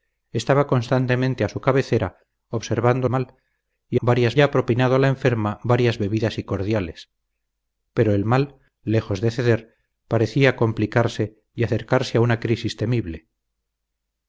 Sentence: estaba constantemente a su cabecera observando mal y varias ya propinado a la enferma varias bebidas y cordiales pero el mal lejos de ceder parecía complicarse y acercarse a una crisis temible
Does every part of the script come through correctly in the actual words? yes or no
yes